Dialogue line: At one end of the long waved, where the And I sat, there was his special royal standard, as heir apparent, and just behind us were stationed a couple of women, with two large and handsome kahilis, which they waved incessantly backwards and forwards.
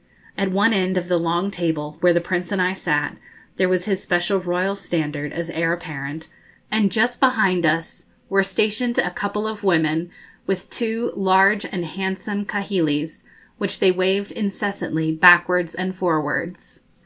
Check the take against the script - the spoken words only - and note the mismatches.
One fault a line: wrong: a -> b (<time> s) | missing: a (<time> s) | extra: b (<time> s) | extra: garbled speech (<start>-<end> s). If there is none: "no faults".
wrong: waved -> table (1.5 s)
extra: Prince (2.2 s)